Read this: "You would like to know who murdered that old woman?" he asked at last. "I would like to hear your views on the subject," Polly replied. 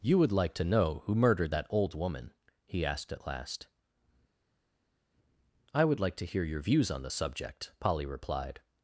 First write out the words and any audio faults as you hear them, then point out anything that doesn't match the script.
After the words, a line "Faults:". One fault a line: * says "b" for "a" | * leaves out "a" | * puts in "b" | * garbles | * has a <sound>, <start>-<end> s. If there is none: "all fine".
"You would like to know who murdered that old woman?" he asked at last. "I would like to hear your views on the subject," Polly replied.
Faults:
all fine